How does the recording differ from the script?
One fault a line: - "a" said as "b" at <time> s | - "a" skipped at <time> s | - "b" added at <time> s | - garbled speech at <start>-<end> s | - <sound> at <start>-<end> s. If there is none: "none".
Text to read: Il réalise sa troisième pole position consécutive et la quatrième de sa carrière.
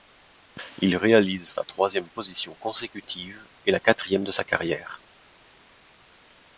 - "pole" skipped at 2.1 s